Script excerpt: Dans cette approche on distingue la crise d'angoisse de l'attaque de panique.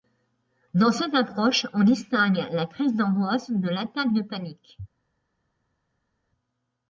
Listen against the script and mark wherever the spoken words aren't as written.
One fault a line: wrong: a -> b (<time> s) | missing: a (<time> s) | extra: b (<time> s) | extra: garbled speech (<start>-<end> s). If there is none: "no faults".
no faults